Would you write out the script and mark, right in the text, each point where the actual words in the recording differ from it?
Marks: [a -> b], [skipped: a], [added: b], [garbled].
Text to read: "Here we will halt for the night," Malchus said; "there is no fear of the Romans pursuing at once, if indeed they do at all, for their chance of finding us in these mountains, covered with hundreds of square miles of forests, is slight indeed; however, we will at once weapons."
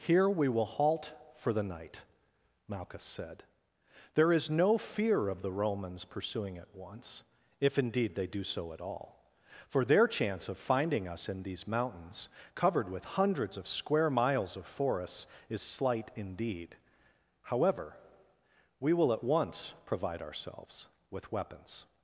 "Here we will halt for the night," Malchus said; "there is no fear of the Romans pursuing at once, if indeed they do [added: so] at all, for their chance of finding us in these mountains, covered with hundreds of square miles of forests, is slight indeed; however, we will at once [added: provide ourselves with] weapons."